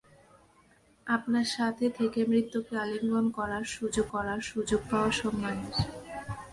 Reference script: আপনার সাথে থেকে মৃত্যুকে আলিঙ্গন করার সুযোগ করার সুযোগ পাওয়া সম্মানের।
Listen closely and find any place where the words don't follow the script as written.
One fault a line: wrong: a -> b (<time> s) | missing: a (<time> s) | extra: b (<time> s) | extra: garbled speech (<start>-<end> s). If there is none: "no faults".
no faults